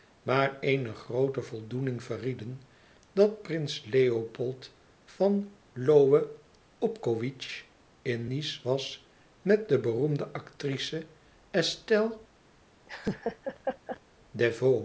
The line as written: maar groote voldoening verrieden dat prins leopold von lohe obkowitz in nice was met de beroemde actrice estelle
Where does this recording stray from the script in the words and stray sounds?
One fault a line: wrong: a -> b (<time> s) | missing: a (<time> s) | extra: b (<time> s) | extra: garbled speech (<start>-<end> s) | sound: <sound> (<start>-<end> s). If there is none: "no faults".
extra: eene (0.6 s)
sound: laugh (12.9-14.0 s)